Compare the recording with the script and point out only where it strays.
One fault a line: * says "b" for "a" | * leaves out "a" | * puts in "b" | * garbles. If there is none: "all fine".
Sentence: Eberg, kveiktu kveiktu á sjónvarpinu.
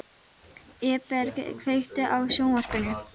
* leaves out "kveiktu"